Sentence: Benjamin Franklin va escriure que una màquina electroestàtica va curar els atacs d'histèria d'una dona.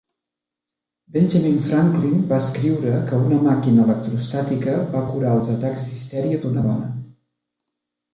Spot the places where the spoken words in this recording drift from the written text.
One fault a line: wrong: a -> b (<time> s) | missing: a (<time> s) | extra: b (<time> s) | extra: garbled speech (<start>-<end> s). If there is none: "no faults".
no faults